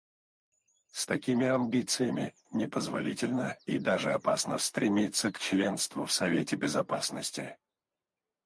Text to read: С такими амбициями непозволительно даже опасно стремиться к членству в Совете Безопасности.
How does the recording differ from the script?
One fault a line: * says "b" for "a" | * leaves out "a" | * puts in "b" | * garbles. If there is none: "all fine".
* puts in "и"